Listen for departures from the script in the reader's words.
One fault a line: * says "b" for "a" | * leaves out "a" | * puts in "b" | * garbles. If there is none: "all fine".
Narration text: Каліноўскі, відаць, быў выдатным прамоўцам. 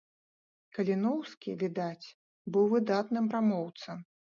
all fine